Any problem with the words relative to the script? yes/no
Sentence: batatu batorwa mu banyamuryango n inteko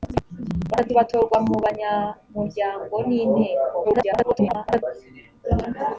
yes